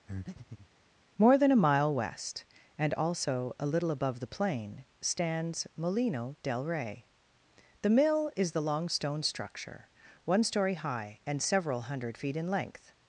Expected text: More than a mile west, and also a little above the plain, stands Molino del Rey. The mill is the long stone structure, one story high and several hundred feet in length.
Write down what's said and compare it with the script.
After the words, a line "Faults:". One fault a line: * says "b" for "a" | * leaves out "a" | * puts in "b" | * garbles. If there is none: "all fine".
More than a mile west, and also a little above the plain, stands Molino del Rey. The mill is the long stone structure, one story high and several hundred feet in length.
Faults:
all fine